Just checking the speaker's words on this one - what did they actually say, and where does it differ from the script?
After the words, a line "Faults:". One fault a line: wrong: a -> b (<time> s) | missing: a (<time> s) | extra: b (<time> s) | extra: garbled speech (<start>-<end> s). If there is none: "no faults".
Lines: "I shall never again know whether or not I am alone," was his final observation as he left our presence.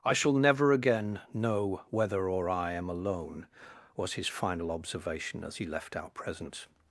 "I shall never again know whether or I am alone," was his final observation as he left our presence.
Faults:
missing: not (2.5 s)